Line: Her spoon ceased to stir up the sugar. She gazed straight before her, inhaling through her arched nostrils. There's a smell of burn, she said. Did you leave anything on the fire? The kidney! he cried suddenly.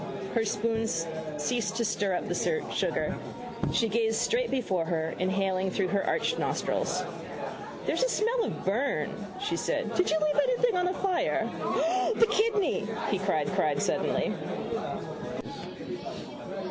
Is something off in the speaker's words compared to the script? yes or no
yes